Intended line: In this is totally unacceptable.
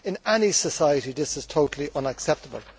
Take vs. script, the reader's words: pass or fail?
fail